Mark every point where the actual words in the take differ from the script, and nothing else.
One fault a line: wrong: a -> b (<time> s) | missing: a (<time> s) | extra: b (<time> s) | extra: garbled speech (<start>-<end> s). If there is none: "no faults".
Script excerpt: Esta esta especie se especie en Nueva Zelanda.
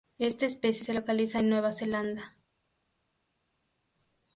missing: esta (0.5 s)
wrong: especie -> localiza (0.9 s)